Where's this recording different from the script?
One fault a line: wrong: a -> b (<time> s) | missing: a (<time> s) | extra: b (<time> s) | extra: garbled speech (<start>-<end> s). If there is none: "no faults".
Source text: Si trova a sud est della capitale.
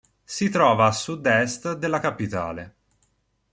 no faults